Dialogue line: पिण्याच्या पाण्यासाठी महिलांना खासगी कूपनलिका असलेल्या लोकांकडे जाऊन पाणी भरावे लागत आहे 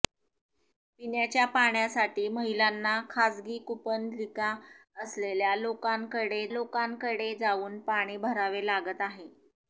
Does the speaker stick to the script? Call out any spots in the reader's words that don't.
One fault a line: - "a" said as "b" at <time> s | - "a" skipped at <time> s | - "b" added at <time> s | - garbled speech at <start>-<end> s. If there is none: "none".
- "लोकांकडे" added at 6.5 s